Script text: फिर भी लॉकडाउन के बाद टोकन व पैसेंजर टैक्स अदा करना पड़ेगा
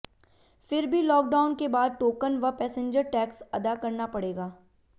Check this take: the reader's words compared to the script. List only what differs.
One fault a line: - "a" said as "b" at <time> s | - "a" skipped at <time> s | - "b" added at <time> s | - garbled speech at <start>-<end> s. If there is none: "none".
none